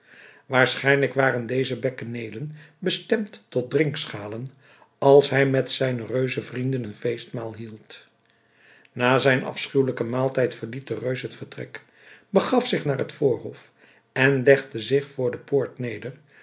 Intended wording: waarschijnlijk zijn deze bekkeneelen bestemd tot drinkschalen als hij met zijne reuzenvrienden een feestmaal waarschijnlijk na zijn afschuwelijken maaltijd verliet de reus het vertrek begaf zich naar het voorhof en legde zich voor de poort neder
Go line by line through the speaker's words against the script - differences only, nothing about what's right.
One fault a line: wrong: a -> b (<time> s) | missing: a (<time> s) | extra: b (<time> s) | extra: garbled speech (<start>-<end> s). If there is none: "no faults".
wrong: zijn -> waren (1.1 s)
wrong: waarschijnlijk -> hield (7.5 s)